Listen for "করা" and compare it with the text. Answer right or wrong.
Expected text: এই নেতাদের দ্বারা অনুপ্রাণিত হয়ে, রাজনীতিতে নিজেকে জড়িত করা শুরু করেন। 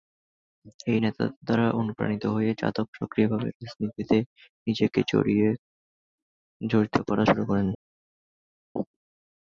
right